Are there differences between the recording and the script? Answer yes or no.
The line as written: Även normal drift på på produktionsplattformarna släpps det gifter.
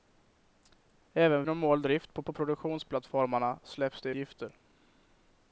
no